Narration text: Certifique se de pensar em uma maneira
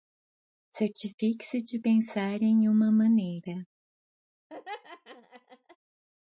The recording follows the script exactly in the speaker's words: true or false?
true